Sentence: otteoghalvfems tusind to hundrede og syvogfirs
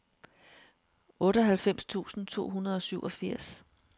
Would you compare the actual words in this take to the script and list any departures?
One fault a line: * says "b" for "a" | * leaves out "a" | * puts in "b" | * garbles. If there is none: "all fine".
all fine